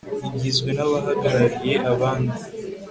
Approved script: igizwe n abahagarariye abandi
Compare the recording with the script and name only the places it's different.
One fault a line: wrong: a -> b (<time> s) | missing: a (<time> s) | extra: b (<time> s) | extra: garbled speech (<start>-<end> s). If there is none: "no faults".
no faults